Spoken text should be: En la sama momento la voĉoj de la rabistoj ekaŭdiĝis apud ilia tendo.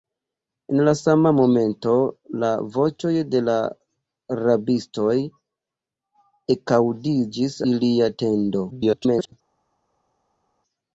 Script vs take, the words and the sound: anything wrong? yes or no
yes